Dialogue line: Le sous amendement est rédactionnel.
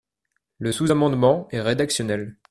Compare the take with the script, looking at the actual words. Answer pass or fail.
pass